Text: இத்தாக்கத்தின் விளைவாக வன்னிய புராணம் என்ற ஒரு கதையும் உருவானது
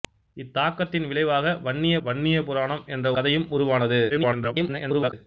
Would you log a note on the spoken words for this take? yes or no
yes